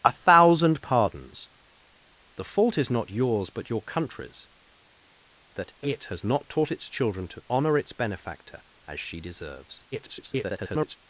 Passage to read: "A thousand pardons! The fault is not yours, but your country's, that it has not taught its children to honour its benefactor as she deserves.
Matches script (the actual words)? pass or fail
fail